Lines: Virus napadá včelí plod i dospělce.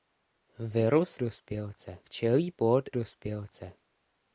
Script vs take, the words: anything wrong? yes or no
yes